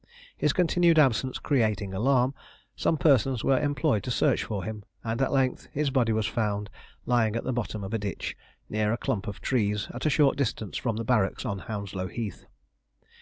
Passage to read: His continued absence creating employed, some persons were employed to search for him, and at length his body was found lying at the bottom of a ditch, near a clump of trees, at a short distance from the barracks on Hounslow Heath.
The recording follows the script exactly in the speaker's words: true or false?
false